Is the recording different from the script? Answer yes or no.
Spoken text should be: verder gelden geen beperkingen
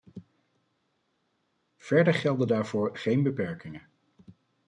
yes